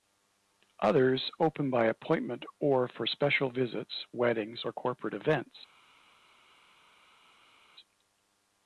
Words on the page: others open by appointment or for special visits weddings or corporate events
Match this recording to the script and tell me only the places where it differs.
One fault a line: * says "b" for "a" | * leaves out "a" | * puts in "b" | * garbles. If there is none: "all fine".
all fine